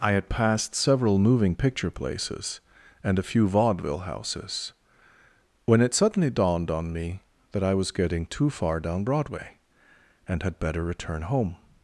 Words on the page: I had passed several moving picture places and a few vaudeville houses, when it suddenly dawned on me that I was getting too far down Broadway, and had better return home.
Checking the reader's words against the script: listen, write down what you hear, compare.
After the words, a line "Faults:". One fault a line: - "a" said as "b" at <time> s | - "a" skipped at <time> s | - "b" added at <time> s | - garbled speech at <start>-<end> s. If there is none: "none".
I had passed several moving picture places and a few vaudeville houses, when it suddenly dawned on me that I was getting too far down Broadway, and had better return home.
Faults:
none